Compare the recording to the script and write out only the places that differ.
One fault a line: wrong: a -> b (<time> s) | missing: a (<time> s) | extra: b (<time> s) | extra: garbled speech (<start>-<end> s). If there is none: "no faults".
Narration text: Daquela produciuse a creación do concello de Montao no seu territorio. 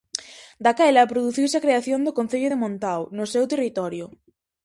no faults